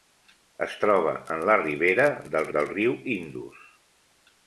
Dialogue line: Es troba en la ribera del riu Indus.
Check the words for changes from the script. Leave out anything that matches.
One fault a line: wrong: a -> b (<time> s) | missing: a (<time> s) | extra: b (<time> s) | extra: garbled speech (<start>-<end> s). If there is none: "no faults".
extra: del (2.6 s)